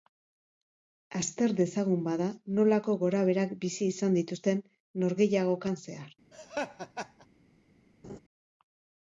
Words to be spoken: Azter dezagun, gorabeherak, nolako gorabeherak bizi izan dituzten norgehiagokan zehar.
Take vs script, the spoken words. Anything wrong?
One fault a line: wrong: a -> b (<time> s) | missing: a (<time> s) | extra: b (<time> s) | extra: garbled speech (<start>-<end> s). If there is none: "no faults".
wrong: gorabeherak -> bada (2.1 s)